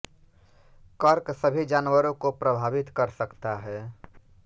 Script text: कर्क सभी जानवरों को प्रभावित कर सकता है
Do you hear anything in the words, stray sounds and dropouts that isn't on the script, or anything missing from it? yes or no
no